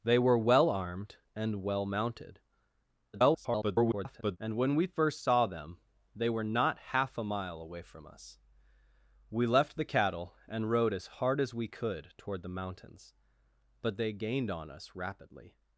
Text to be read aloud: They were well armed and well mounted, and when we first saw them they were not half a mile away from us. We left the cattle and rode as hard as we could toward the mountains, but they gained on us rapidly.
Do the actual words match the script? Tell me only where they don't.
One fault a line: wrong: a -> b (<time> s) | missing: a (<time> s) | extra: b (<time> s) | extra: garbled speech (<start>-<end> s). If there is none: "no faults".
extra: garbled speech (3.1-4.4 s)